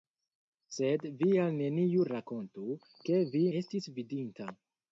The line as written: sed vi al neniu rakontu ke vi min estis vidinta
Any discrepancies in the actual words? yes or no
yes